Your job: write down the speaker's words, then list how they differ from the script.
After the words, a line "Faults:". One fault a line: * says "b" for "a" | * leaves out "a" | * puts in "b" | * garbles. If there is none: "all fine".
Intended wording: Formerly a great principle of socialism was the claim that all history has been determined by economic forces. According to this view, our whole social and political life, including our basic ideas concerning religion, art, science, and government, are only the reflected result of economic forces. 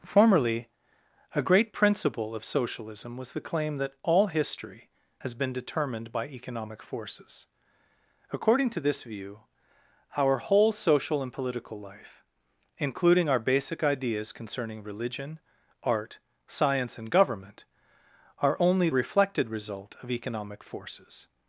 Formerly a great principle of socialism was the claim that all history has been determined by economic forces. According to this view, our whole social and political life, including our basic ideas concerning religion, art, science, and government, are only reflected result of economic forces.
Faults:
* leaves out "the"